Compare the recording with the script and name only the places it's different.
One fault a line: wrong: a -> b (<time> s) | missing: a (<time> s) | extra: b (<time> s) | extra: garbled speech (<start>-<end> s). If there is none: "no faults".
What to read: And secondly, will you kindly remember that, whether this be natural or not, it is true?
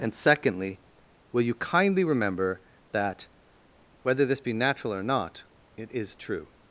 no faults